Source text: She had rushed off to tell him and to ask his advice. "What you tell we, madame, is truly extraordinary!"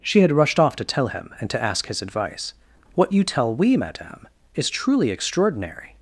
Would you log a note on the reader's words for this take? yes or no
no